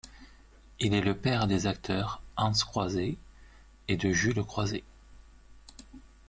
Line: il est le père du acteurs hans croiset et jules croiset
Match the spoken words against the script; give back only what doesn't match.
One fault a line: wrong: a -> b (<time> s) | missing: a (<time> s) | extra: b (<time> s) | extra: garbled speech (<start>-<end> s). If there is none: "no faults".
wrong: du -> des (1.4 s)
extra: de (4.0 s)